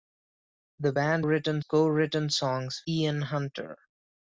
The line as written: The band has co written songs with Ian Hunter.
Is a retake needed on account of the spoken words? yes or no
yes